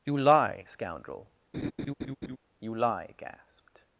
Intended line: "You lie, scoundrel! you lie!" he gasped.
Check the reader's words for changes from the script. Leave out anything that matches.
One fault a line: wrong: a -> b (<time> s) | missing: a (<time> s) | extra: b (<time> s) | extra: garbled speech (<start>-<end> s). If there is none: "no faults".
missing: he (3.1 s)